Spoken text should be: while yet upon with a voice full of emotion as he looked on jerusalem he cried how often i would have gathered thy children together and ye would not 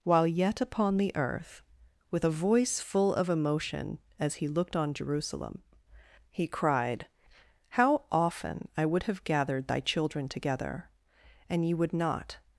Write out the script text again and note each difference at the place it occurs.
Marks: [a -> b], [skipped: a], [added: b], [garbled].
while yet upon [added: the earth] with a voice full of emotion as he looked on jerusalem he cried how often i would have gathered thy children together and ye would not